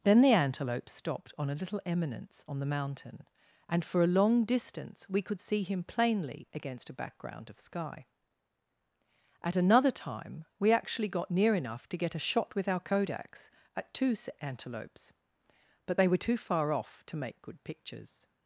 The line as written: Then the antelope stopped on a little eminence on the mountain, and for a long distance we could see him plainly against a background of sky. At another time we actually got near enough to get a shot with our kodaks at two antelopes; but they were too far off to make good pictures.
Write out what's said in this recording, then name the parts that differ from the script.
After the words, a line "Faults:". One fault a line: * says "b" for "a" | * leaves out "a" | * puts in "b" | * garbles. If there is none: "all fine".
Then the antelope stopped on a little eminence on the mountain, and for a long distance we could see him plainly against a background of sky. At another time we actually got near enough to get a shot with our kodaks at two antelopes; but they were too far off to make good pictures.
Faults:
all fine